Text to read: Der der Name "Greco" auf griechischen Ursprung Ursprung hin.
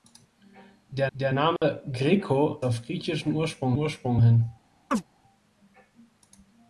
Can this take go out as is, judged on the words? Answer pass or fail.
pass